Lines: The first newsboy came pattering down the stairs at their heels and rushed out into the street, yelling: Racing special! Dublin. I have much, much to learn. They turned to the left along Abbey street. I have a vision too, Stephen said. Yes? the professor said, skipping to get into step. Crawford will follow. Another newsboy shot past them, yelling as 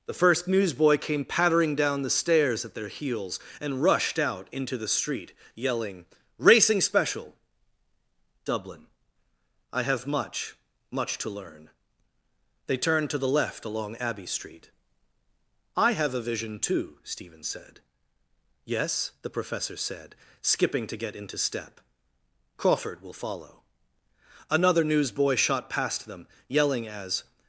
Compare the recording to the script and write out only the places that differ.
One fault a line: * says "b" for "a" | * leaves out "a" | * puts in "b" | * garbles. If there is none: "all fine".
all fine